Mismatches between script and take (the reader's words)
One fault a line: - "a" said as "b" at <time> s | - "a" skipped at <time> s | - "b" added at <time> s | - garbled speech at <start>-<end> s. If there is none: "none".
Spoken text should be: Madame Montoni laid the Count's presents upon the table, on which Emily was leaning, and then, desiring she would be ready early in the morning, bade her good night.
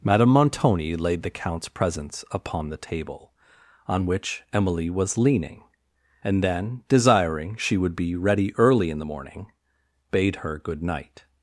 none